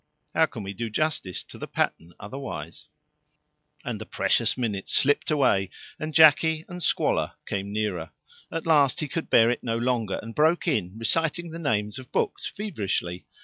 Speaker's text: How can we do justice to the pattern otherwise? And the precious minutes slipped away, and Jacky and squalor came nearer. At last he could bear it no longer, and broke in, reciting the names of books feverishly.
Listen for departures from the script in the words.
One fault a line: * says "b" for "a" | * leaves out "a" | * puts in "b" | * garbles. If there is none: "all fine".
all fine